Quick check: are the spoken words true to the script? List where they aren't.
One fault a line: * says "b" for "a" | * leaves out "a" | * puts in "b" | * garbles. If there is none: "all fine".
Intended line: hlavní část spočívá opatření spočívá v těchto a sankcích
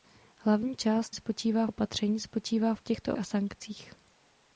all fine